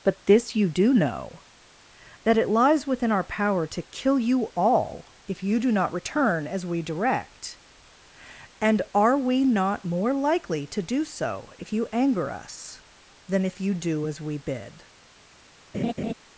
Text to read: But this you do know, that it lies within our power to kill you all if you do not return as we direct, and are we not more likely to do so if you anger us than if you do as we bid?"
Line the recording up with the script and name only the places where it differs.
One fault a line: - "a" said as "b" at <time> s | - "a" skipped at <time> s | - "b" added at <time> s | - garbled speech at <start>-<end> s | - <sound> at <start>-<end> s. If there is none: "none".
- laugh at 15.7-16.1 s